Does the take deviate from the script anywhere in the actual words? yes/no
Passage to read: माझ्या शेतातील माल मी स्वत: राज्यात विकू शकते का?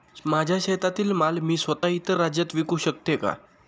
yes